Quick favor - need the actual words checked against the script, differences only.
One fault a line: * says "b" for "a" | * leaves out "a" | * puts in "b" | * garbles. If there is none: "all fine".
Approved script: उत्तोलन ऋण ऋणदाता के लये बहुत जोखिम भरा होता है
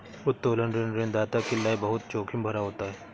all fine